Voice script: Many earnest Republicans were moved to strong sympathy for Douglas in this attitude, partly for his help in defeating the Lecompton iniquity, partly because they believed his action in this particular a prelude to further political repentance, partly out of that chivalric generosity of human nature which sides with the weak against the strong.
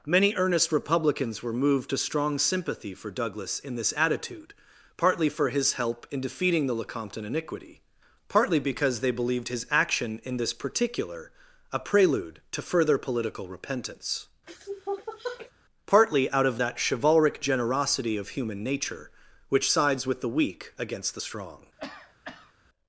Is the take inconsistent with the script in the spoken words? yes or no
no